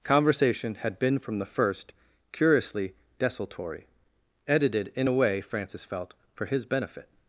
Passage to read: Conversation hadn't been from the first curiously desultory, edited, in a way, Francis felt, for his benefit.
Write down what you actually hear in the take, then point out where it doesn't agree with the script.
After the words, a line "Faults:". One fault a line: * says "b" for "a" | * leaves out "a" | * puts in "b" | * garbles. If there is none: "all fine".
Conversation had been from the first curiously desultory, edited, in a way, Francis felt, for his benefit.
Faults:
* says "had" for "hadn't"